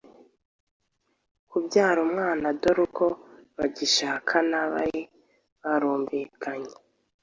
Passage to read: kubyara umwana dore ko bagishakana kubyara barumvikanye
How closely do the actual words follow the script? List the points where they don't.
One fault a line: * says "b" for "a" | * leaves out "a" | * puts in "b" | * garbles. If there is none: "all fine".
* says "bari" for "kubyara"